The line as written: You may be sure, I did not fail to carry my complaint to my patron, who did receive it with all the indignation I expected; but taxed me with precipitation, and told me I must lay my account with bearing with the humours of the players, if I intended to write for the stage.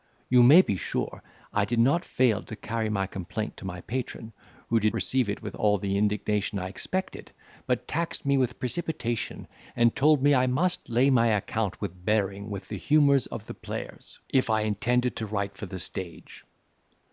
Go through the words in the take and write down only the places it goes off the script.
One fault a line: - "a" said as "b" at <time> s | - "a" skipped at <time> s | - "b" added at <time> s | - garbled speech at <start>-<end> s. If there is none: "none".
none